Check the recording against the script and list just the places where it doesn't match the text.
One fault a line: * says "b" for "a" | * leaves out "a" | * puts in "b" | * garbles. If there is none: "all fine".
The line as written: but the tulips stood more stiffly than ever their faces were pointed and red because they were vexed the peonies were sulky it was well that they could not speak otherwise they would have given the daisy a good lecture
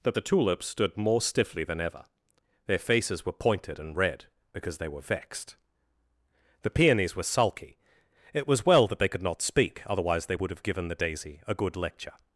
* says "that" for "but"